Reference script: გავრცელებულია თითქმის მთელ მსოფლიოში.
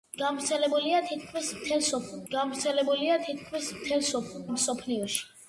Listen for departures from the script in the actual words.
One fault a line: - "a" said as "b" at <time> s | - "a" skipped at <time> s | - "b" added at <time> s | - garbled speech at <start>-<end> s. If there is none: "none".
- "გავრცელებულია თითქმის მთელ" added at 2.3 s